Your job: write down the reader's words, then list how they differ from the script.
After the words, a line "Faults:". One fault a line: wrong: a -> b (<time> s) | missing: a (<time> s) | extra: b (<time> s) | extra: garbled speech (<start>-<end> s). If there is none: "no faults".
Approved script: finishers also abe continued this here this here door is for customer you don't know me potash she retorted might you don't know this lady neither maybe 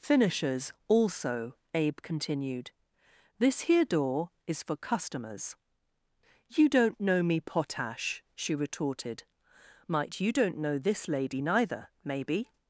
finishers also abe continued this here door is for customers you don't know me potash she retorted might you don't know this lady neither maybe
Faults:
missing: this here (3.9 s)
wrong: customer -> customers (4.8 s)